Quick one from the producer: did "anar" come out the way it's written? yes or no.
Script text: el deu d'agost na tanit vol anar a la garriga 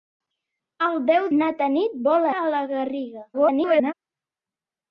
no